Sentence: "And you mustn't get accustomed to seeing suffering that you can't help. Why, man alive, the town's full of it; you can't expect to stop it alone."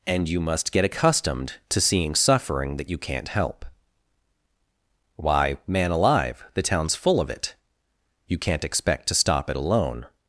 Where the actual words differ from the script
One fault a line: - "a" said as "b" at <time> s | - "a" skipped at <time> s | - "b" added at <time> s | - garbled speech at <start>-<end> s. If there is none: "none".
- "mustn't" said as "must" at 0.4 s